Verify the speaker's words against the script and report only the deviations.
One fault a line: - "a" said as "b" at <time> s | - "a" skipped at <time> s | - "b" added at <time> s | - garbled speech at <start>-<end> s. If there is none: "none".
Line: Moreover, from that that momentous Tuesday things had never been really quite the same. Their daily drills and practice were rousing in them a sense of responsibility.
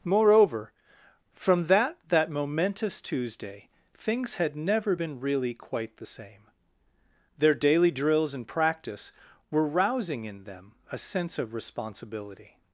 none